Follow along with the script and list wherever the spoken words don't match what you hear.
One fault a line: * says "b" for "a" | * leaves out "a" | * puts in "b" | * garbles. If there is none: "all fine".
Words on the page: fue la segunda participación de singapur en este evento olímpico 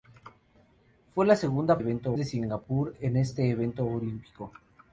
* says "evento" for "participación"